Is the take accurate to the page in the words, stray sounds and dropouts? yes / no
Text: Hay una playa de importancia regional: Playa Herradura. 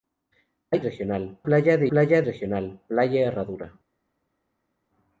no